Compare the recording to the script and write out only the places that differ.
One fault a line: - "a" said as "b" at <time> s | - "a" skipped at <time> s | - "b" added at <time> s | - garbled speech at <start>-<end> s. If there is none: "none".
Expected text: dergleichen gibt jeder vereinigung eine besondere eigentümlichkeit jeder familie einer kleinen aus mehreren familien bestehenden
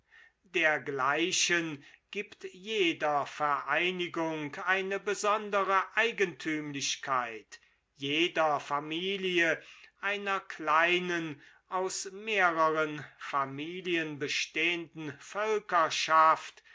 none